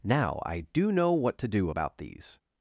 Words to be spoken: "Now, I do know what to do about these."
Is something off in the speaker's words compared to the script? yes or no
no